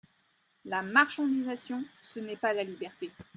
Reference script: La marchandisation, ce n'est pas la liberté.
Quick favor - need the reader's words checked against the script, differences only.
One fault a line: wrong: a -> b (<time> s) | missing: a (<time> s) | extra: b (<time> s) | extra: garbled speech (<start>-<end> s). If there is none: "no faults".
no faults